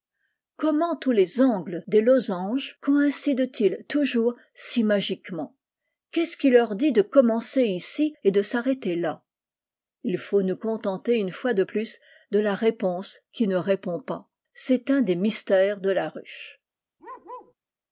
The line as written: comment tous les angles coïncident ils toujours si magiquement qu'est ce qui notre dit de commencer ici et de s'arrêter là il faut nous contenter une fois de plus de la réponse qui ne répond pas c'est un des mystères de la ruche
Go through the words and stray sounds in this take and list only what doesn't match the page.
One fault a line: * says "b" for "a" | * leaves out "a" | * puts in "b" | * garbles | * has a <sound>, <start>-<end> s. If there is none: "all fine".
* puts in "des losanges"
* says "leur" for "notre"
* has a bark, 17.0-17.5 s